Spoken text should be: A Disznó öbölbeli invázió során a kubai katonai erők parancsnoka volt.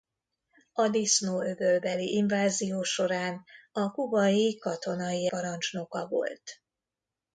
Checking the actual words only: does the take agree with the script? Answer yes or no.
no